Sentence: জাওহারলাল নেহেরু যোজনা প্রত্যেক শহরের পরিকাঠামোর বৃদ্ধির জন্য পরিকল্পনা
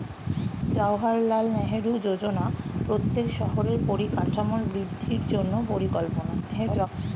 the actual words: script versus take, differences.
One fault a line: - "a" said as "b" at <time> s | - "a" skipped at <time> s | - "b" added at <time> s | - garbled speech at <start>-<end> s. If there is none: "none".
- garbled speech at 6.4-6.9 s